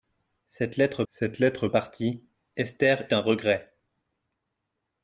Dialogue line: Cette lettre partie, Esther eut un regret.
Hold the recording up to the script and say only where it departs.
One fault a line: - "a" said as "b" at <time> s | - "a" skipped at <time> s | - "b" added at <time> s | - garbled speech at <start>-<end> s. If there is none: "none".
- "cette lettre" added at 1.1 s
- "eut" skipped at 3.1 s